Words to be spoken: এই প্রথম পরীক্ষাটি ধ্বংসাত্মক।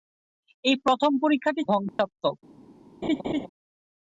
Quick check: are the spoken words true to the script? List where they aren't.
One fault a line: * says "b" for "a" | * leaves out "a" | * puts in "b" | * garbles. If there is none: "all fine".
all fine